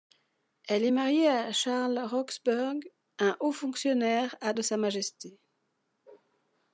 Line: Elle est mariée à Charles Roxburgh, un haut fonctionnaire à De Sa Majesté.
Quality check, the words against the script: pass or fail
pass